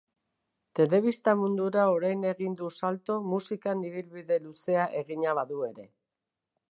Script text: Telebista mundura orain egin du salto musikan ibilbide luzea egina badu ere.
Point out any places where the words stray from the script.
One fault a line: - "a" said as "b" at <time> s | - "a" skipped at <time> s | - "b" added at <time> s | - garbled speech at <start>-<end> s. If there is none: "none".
none